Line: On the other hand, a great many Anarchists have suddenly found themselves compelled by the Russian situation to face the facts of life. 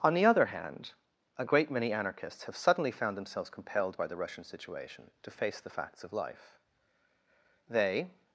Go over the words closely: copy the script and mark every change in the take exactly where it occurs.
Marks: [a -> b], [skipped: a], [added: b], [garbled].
On the other hand, a great many Anarchists have suddenly found themselves compelled by the Russian situation to face the facts of life. [added: They]